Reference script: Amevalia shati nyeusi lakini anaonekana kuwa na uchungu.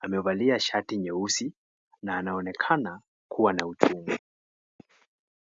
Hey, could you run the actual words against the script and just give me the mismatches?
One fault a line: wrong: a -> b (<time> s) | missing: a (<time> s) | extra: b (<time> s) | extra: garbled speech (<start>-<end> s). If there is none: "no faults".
wrong: lakini -> na (2.0 s)